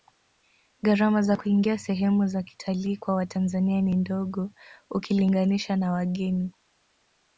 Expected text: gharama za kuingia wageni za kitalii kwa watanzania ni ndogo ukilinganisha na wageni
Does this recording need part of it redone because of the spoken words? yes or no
yes